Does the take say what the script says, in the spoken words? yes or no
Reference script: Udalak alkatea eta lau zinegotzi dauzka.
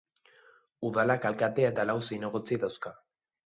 yes